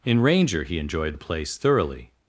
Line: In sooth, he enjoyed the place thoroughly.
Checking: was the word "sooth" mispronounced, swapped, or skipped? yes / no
yes